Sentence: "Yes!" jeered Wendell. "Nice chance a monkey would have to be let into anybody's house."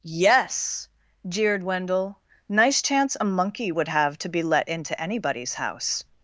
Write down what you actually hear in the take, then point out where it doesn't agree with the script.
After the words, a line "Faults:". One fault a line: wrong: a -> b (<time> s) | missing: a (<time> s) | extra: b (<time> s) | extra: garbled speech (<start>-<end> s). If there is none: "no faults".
"Yes!" jeered Wendell. "Nice chance a monkey would have to be let into anybody's house."
Faults:
no faults